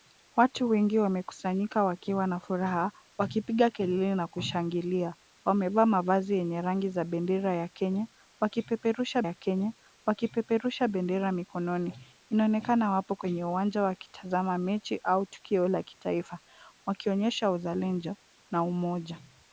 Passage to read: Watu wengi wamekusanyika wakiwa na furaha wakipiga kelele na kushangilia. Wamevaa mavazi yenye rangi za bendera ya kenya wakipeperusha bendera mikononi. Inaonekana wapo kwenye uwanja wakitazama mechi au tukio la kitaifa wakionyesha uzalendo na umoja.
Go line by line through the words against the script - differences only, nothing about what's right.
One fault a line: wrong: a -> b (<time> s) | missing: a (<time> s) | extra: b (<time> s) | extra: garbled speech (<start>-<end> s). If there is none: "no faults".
extra: ya kenya wakipeperusha (9.2 s)